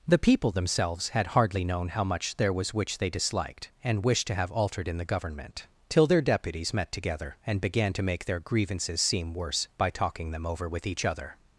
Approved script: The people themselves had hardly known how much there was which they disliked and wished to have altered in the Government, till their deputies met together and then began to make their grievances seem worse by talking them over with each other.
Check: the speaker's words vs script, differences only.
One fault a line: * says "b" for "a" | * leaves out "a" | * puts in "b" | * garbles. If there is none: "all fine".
* leaves out "then"